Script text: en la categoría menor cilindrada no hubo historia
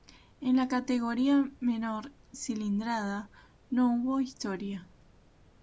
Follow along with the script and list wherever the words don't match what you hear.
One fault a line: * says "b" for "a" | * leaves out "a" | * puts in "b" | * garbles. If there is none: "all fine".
all fine